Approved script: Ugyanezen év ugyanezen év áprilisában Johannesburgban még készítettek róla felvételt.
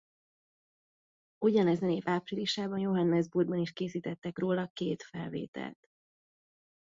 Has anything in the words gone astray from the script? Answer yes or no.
yes